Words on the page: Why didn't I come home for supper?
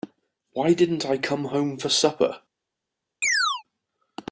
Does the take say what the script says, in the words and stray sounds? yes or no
no